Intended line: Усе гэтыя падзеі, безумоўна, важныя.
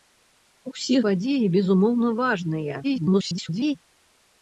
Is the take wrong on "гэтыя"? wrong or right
wrong